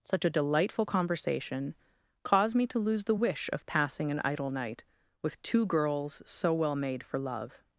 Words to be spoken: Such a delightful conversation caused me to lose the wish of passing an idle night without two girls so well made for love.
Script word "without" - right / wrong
wrong